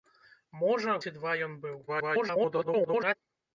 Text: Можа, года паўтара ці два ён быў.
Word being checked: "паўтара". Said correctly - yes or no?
no